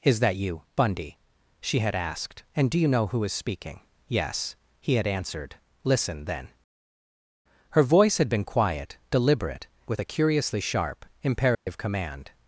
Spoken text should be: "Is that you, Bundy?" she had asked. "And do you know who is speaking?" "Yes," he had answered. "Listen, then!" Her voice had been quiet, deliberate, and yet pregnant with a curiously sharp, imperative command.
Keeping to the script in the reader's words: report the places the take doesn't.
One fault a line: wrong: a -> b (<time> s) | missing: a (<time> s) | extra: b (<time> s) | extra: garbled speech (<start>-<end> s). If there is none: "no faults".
missing: and yet pregnant (9.7 s)